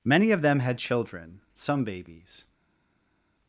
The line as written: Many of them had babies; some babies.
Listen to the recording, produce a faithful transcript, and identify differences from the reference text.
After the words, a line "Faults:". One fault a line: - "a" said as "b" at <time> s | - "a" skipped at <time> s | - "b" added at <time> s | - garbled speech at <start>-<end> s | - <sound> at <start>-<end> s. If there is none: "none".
Many of them had children; some babies.
Faults:
- "babies" said as "children" at 0.8 s